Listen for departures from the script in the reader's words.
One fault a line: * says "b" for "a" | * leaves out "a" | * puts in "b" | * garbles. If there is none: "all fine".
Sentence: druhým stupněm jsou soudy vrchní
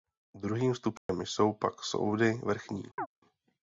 * puts in "pak"